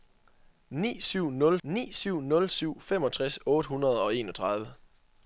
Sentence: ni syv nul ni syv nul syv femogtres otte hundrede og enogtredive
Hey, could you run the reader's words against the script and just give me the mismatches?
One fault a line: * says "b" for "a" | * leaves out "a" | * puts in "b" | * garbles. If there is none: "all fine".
all fine